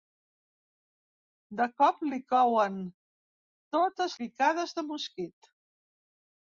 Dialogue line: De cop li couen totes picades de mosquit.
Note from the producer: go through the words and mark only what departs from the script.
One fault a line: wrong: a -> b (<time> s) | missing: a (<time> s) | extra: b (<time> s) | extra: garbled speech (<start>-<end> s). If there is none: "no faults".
no faults